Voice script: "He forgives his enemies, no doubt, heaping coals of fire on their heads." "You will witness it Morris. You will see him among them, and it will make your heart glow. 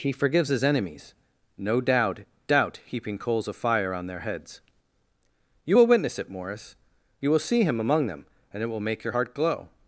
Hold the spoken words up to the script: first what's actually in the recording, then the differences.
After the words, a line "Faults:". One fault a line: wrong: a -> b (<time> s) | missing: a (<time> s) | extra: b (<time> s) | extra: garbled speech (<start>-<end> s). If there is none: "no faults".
"He forgives his enemies, no doubt doubt, heaping coals of fire on their heads." "You will witness it Morris. You will see him among them, and it will make your heart glow.
Faults:
extra: doubt (2.5 s)